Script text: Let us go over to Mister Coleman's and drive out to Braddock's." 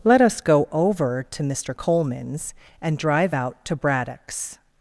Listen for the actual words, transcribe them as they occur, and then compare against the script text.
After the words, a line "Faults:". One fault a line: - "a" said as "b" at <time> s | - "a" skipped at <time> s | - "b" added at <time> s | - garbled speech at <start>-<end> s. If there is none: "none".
Let us go over to Mister Coleman's and drive out to Braddock's."
Faults:
none